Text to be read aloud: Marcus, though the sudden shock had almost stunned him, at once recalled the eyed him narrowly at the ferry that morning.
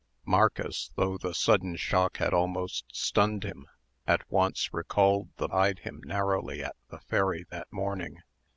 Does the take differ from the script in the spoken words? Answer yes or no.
no